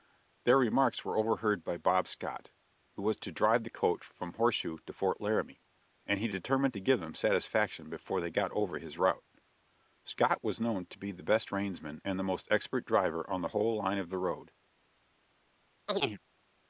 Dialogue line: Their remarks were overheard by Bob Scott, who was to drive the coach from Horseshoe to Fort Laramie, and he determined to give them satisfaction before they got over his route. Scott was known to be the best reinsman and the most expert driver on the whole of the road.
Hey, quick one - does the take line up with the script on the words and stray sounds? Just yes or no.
no